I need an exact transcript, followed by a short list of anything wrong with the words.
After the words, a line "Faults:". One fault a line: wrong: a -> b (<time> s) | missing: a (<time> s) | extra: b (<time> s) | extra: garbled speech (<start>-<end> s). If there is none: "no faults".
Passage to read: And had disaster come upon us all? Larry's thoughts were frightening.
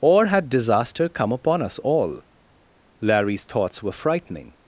Or had disaster come upon us all? Larry's thoughts were frightening.
Faults:
wrong: And -> Or (0.0 s)